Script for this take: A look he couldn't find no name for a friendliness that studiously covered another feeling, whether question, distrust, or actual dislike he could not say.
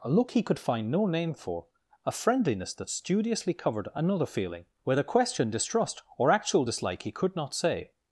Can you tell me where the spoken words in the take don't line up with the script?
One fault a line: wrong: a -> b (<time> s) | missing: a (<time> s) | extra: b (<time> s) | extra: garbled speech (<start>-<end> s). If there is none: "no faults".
wrong: couldn't -> could (0.4 s)